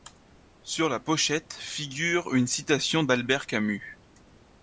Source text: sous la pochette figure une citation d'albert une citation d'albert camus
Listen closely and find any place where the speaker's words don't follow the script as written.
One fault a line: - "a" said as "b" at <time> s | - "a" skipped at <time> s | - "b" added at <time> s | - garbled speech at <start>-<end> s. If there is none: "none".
- "sous" said as "sur" at 0.6 s
- "une citation d'albert" skipped at 3.5 s